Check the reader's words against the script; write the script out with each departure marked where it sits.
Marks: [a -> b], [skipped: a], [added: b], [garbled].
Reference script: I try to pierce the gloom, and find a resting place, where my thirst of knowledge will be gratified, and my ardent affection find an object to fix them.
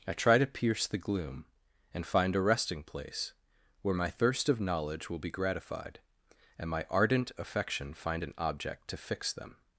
I try to pierce the gloom, and find a resting place, where my thirst of knowledge will be gratified, and my ardent affection find an object to fix them.